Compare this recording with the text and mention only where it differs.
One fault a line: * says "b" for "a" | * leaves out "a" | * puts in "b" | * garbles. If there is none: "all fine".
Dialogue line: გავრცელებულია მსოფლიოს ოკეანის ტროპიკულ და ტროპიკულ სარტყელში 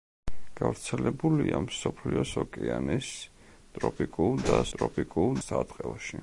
all fine